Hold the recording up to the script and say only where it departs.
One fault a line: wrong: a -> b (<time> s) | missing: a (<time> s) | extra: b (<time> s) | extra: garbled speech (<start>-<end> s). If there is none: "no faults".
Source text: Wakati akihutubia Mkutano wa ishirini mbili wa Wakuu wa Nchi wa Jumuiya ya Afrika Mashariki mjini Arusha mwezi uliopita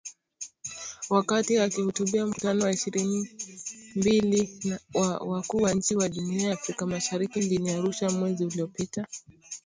no faults